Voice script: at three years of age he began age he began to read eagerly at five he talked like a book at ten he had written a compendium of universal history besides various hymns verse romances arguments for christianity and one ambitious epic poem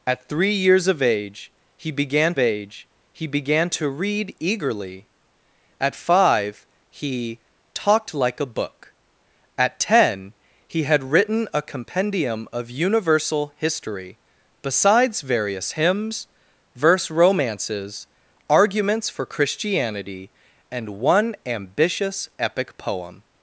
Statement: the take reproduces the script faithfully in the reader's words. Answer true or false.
true